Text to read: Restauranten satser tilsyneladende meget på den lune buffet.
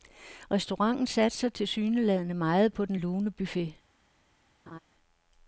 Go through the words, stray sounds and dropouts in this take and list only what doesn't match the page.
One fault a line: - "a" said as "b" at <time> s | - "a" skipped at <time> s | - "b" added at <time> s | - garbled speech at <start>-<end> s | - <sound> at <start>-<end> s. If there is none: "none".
- laugh at 4.7-4.8 s